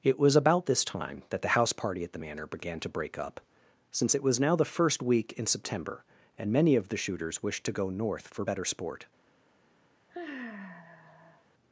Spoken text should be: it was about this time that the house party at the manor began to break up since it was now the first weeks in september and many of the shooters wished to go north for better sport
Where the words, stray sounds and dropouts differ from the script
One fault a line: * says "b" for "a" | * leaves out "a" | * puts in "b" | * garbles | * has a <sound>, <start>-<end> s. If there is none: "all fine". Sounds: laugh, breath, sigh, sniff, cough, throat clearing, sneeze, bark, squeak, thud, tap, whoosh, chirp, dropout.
* says "week" for "weeks"
* has a sigh, 10.1-11.4 s